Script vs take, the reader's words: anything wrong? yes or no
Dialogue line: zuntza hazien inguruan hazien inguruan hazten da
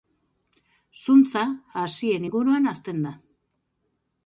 yes